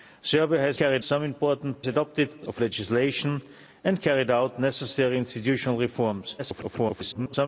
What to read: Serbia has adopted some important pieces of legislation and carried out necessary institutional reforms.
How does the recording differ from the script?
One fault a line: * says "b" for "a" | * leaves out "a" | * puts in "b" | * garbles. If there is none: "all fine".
* says "carried" for "adopted"
* says "adopted" for "pieces"
* garbles